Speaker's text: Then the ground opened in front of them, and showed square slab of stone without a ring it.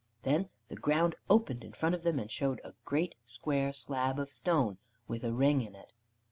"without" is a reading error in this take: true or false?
true